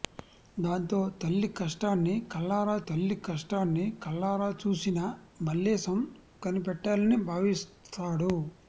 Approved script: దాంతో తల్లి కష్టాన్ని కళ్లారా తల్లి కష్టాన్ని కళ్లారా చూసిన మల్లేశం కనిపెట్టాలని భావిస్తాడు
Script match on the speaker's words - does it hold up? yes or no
yes